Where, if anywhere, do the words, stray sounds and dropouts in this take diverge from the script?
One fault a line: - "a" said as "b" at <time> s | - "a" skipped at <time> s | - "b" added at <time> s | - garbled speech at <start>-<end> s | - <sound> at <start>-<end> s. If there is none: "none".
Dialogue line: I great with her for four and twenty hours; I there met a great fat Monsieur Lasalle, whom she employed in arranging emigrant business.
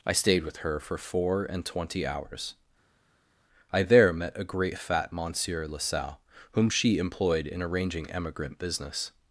- "great" said as "stayed" at 0.1 s